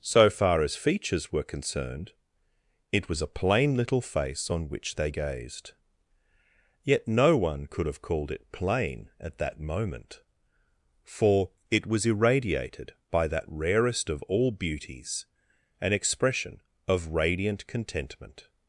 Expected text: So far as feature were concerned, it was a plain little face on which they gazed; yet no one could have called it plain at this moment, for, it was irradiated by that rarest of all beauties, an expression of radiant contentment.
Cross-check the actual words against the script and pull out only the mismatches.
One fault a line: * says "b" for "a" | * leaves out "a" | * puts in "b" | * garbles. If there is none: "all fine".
* says "features" for "feature"
* says "that" for "this"